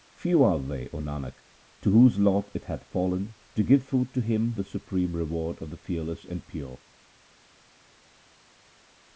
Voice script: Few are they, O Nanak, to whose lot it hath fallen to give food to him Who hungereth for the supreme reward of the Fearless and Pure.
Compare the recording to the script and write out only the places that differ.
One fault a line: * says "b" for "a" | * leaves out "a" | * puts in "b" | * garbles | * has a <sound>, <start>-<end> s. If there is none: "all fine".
* leaves out "Who hungereth for"